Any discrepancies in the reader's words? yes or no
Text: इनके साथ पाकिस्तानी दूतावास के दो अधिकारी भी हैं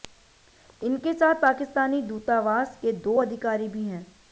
no